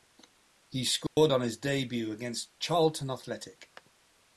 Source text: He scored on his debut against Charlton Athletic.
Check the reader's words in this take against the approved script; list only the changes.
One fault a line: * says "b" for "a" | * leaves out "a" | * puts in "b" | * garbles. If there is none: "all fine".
all fine